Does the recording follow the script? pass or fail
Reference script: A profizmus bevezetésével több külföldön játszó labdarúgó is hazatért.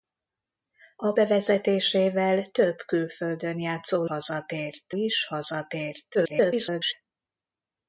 fail